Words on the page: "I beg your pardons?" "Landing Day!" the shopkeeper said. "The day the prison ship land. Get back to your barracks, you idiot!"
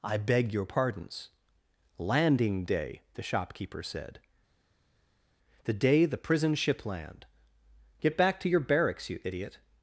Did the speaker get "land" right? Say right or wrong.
right